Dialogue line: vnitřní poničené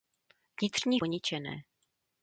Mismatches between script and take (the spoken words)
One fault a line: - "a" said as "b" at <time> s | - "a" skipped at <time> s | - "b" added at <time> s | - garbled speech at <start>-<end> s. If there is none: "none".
none